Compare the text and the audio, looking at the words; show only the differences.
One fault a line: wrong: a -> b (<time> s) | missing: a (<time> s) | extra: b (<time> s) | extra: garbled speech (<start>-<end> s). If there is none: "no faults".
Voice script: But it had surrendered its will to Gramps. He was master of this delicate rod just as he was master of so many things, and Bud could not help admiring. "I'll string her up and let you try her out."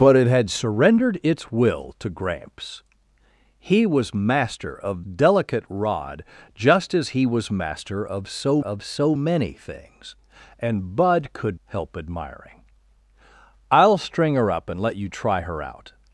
missing: this (5.0 s)
extra: of so (8.6 s)
missing: not (11.6 s)